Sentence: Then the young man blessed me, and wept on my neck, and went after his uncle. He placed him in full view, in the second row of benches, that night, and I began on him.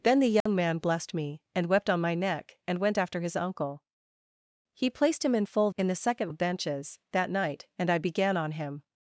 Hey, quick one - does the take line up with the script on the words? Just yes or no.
no